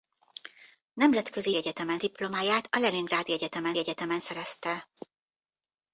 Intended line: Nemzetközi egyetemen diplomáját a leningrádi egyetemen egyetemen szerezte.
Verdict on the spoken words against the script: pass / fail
pass